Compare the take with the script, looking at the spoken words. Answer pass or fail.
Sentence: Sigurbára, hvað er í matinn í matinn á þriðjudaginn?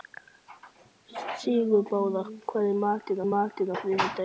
pass